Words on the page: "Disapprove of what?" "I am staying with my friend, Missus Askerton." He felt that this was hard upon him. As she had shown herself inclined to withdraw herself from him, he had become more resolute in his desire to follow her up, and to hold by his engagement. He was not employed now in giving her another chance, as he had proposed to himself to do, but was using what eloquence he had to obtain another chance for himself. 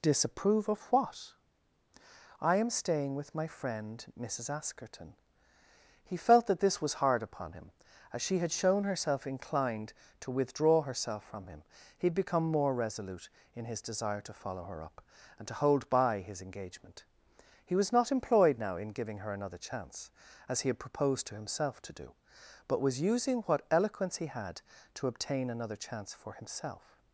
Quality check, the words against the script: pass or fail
pass